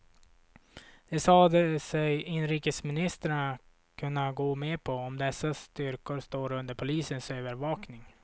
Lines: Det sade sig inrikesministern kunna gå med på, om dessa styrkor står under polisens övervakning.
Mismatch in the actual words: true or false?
false